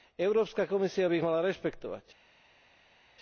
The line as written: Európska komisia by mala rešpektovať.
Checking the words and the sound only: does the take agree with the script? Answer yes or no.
no